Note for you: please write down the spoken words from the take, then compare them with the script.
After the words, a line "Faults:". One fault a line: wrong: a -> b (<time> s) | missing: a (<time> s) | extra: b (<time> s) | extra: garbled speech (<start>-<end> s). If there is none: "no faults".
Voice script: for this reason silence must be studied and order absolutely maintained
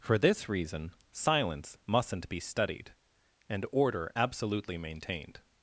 for this reason silence mustn't be studied and order absolutely maintained
Faults:
wrong: must -> mustn't (1.9 s)